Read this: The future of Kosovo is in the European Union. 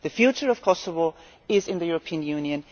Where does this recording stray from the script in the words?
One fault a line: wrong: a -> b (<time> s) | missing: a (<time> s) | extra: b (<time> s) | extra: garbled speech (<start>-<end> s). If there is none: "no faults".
no faults